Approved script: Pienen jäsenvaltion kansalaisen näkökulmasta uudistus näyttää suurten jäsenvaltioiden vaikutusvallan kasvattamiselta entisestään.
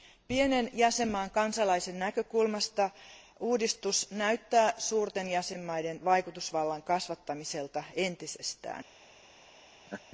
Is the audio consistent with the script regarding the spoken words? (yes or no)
yes